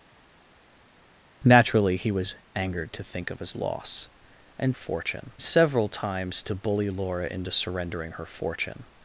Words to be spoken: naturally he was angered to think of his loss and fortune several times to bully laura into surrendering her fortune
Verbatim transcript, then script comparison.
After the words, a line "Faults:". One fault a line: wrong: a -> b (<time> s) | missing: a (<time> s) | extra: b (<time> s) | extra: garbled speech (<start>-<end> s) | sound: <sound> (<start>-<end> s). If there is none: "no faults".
naturally he was angered to think of his loss and fortune several times to bully laura into surrendering her fortune
Faults:
no faults